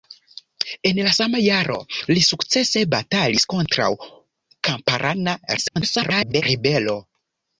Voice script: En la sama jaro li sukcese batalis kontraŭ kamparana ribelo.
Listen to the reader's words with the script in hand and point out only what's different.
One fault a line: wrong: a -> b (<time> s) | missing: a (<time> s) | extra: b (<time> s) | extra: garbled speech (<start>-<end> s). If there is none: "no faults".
extra: garbled speech (5.6-6.4 s)